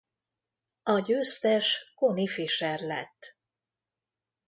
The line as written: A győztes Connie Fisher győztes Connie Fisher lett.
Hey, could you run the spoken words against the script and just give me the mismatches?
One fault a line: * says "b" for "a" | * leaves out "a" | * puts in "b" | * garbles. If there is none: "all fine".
* leaves out "győztes Connie Fisher"